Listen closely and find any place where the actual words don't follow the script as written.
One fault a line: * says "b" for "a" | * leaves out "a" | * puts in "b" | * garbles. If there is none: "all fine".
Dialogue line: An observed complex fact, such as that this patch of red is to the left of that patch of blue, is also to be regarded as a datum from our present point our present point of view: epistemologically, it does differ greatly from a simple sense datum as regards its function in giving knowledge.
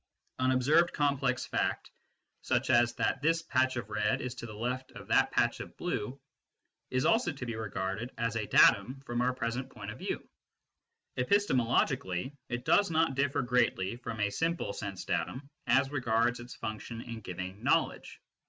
* leaves out "our present point"
* puts in "not"